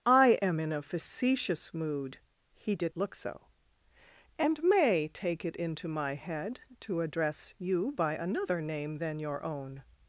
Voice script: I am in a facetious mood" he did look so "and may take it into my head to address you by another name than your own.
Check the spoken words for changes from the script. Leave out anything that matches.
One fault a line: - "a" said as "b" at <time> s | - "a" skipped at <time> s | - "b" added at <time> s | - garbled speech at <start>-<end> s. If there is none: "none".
none